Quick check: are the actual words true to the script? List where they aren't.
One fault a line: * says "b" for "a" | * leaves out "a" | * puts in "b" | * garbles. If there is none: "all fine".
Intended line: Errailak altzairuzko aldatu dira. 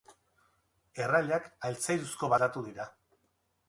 all fine